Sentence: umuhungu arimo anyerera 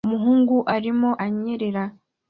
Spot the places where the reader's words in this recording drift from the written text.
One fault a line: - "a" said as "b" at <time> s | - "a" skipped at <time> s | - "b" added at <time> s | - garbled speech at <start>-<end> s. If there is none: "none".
none